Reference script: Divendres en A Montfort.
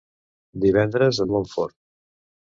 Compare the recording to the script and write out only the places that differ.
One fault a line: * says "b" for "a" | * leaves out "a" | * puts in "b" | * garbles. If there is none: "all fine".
all fine